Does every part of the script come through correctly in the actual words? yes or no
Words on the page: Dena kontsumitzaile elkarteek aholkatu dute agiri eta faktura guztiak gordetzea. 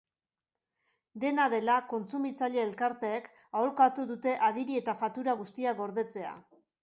no